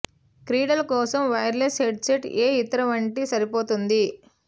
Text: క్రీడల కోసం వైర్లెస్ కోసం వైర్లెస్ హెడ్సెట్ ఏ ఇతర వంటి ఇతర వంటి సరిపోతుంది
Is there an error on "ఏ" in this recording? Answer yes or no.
no